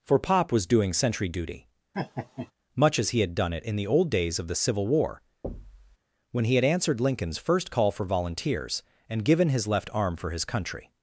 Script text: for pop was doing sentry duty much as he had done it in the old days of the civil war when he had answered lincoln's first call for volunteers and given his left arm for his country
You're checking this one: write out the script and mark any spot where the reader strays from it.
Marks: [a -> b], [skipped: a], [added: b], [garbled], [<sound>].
for pop was doing sentry duty [laugh] much as he had done it in the old days of the civil war [thud] when he had answered lincoln's first call for volunteers and given his left arm for his country